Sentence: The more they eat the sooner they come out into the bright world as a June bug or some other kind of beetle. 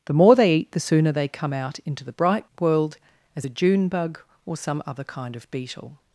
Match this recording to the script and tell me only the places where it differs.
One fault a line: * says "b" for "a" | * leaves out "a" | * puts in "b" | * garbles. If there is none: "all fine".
all fine